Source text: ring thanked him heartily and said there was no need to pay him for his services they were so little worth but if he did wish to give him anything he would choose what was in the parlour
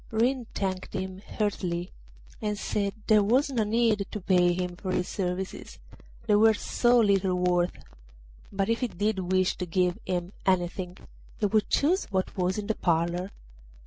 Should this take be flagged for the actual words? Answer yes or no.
no